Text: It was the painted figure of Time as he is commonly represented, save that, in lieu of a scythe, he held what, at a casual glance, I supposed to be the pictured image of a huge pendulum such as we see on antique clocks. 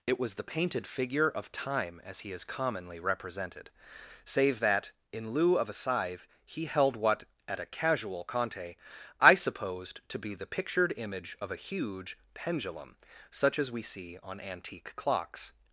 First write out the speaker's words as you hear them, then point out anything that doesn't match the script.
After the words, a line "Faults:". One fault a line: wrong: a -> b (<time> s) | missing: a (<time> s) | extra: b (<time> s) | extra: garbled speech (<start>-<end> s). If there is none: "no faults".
It was the painted figure of Time as he is commonly represented, save that, in lieu of a scythe, he held what, at a casual conte, I supposed to be the pictured image of a huge pendulum such as we see on antique clocks.
Faults:
wrong: glance -> conte (8.2 s)